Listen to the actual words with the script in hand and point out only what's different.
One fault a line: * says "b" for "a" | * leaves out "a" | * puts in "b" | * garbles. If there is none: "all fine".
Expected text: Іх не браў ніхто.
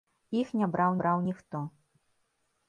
* puts in "браў"